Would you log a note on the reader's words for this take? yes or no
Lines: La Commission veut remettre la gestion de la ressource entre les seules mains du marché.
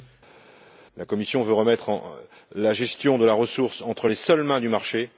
no